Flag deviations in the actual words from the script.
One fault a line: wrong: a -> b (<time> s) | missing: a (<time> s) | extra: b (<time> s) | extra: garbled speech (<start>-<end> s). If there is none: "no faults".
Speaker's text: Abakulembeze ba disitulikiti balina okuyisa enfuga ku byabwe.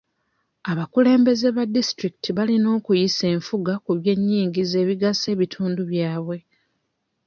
extra: by'ennyingiza ebigasa ebitundu (4.0 s)